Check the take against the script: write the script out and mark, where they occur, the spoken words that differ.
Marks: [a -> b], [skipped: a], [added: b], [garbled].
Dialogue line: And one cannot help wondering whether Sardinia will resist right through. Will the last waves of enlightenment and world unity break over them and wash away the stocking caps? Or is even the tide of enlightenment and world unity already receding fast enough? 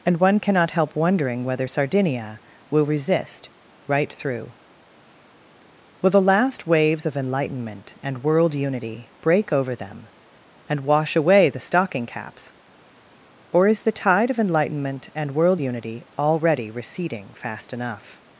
And one cannot help wondering whether Sardinia will resist right through. Will the last waves of enlightenment and world unity break over them and wash away the stocking caps? Or is [skipped: even] the tide of enlightenment and world unity already receding fast enough?